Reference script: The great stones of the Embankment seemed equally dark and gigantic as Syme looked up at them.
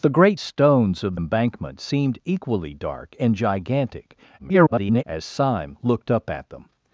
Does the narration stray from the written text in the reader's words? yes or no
yes